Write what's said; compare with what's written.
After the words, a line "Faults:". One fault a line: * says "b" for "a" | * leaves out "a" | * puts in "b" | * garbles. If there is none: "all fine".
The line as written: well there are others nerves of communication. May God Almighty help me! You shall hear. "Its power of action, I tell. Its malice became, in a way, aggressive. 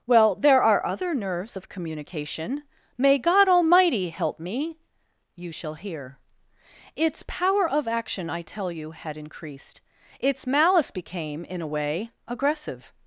well there are other nerves of communication. May God Almighty help me! You shall hear. "Its power of action, I tell you, had increased. Its malice became, in a way, aggressive.
Faults:
* says "other" for "others"
* puts in "you had increased"